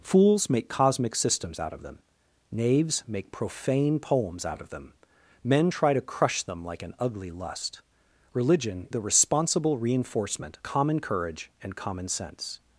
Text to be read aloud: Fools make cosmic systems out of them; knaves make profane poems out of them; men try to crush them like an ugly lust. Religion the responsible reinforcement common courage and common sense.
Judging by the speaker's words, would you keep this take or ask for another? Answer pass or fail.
pass